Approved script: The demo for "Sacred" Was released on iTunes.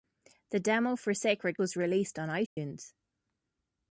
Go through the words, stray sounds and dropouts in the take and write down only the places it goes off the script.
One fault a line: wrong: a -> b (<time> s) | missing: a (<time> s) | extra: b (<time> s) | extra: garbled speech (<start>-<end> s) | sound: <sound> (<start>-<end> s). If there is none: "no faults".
sound: dropout (2.5-2.6 s)